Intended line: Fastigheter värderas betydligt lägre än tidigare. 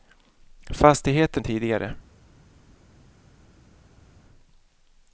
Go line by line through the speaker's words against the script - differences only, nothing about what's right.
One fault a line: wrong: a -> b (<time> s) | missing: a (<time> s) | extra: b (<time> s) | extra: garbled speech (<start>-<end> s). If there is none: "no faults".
missing: värderas betydligt lägre (1.4 s)